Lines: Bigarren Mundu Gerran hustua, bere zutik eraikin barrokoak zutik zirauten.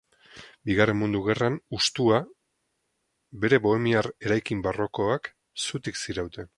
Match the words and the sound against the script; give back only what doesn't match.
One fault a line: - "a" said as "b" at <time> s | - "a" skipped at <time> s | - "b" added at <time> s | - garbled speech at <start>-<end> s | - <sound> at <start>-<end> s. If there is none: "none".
- "zutik" said as "bohemiar" at 3.7 s